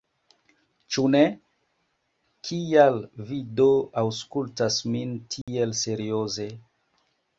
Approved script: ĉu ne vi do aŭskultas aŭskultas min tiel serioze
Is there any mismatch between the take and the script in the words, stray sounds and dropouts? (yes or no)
yes